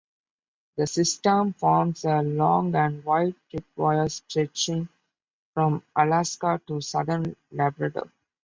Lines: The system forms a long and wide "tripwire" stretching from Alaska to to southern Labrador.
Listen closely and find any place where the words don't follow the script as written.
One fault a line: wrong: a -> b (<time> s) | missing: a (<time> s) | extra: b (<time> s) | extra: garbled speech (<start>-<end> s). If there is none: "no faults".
missing: to (6.8 s)